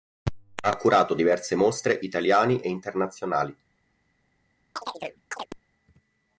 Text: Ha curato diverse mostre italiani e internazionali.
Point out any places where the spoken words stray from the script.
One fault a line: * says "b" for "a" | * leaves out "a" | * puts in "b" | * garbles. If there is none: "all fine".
all fine